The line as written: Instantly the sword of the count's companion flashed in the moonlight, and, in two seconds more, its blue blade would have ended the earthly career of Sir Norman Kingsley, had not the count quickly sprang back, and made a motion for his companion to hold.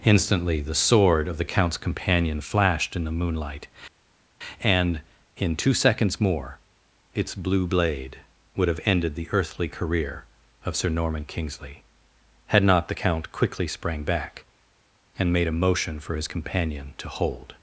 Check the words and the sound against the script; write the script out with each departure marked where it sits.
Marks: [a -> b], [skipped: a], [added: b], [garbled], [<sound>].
Instantly the sword of the count's companion flashed in the moonlight, and, in two seconds more, its blue blade would have ended the earthly career of Sir Norman Kingsley, had not the count quickly sprang back, and made a motion for his companion to hold.